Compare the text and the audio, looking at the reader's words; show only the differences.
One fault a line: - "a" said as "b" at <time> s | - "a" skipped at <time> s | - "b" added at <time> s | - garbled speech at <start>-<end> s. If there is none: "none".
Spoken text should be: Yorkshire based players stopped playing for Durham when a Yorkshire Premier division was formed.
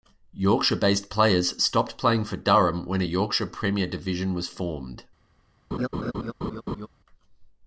none